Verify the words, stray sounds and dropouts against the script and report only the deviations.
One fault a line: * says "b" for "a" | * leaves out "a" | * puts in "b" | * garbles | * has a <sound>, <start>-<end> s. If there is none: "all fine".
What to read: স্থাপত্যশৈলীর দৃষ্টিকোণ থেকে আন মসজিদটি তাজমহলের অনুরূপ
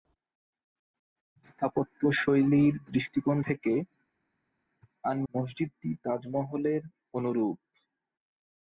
all fine